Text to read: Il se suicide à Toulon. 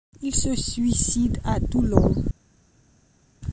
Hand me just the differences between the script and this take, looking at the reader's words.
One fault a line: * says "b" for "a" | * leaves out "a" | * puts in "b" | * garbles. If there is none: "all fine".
all fine